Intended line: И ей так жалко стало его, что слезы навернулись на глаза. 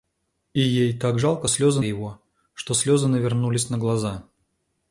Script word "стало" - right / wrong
wrong